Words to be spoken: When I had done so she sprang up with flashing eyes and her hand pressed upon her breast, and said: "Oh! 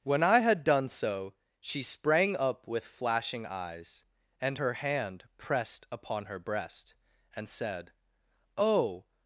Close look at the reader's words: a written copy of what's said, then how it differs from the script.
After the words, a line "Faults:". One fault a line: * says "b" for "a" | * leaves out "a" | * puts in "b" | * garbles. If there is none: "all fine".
When I had done so she sprang up with flashing eyes and her hand pressed upon her breast, and said: "Oh!
Faults:
all fine